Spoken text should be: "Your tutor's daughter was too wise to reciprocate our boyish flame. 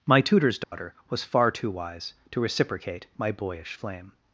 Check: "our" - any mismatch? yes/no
yes